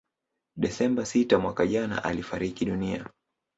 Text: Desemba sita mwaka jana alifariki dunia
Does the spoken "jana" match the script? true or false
true